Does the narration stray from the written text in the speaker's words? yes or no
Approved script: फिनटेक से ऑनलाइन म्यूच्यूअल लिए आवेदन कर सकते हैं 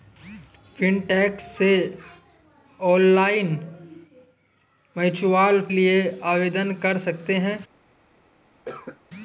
no